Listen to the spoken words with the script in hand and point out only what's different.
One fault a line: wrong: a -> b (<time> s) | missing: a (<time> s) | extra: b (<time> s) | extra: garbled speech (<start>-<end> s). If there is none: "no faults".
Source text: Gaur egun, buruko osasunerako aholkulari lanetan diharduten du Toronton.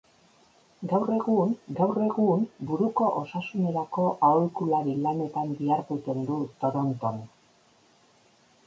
extra: gaur egun (1.8 s)